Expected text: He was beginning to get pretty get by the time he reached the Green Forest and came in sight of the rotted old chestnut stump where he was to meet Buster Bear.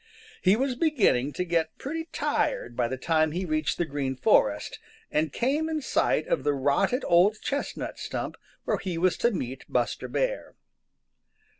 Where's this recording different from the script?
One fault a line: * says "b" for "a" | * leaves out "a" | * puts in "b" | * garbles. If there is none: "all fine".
* says "tired" for "get"